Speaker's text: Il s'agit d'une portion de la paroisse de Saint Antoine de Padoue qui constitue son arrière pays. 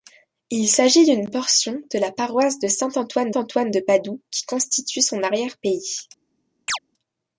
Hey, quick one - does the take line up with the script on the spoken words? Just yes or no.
no